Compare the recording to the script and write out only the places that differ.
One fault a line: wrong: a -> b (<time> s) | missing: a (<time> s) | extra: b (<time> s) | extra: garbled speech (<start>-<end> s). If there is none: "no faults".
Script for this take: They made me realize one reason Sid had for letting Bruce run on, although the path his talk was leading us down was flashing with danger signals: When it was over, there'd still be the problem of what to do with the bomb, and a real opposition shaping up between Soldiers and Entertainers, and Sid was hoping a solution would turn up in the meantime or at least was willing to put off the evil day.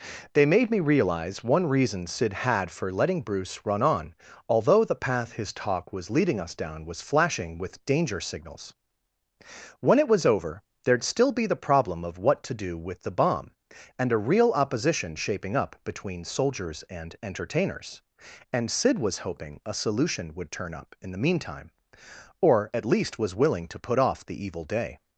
no faults